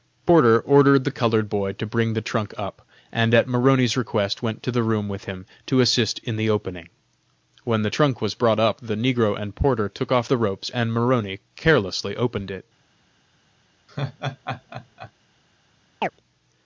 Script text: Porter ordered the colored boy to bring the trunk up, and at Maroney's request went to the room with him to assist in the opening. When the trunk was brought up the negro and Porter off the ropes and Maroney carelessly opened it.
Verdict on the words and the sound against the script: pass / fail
fail